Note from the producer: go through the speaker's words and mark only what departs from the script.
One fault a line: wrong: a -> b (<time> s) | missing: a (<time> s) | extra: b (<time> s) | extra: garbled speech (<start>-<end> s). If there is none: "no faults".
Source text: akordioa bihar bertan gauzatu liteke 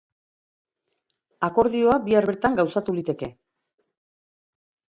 no faults